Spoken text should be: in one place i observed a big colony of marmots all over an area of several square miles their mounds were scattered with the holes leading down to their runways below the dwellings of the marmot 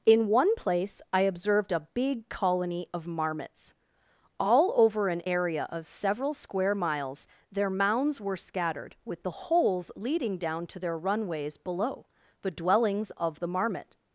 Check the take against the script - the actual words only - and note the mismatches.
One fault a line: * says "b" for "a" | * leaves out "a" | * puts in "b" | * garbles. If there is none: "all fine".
all fine